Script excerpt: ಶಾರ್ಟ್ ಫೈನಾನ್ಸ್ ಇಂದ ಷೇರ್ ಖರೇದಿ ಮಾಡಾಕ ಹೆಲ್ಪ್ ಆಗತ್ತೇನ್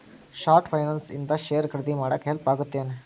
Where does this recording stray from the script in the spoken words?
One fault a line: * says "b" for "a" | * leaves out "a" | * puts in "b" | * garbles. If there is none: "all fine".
all fine